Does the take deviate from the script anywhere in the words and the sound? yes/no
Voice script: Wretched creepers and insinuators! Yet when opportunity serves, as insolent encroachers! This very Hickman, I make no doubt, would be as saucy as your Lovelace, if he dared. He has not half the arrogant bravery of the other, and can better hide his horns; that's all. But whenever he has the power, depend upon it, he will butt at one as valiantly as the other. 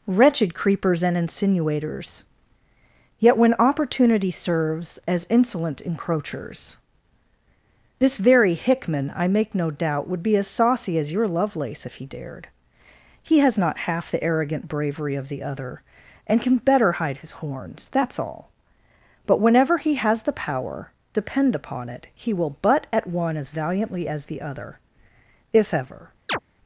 yes